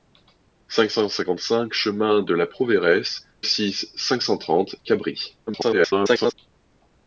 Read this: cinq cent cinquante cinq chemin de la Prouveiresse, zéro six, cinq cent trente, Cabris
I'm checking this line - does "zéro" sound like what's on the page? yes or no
no